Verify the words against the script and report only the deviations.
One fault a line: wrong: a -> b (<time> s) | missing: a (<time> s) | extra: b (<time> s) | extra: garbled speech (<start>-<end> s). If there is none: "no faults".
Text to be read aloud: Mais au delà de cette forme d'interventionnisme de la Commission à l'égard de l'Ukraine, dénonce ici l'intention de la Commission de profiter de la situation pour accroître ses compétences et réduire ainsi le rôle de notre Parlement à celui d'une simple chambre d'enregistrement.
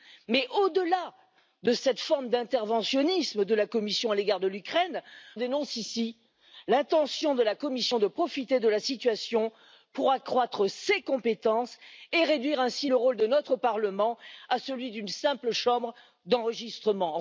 no faults